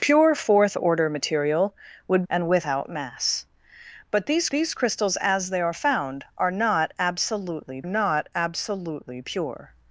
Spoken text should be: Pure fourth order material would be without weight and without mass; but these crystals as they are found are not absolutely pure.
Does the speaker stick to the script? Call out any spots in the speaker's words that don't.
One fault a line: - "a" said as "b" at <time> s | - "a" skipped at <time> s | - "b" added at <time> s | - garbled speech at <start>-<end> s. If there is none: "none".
- "be without weight" skipped at 2.2 s
- "these" added at 4.5 s
- "not absolutely" added at 7.8 s